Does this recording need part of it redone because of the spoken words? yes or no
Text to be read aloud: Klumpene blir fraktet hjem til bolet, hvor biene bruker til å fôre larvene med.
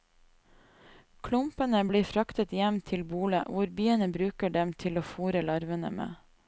yes